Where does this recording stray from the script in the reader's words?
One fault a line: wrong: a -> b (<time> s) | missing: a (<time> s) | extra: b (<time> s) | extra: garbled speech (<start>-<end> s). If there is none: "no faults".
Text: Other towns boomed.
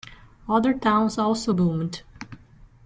extra: also (1.2 s)